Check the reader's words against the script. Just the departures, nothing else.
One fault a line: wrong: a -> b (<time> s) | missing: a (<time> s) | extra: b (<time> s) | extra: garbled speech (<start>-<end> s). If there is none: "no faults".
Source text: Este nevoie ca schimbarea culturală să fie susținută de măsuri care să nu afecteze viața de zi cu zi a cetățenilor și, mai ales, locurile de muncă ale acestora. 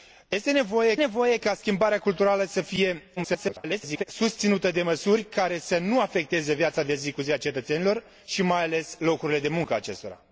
extra: nevoie (1.0 s)
extra: garbled speech (3.2-4.0 s)